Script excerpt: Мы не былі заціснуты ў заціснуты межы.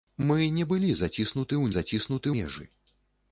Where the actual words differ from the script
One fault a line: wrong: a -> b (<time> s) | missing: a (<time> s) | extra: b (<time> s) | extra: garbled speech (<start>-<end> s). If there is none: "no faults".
no faults